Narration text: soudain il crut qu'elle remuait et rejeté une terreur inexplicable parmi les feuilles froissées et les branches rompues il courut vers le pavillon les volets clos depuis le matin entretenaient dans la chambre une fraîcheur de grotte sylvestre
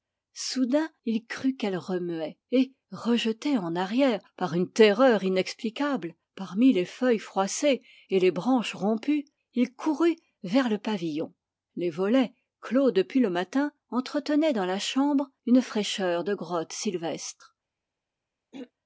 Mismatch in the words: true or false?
true